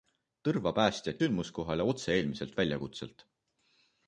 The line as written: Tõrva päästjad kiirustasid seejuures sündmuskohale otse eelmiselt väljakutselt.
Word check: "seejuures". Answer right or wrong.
wrong